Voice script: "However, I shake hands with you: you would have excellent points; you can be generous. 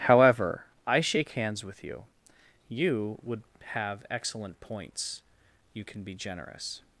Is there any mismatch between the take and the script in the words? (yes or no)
no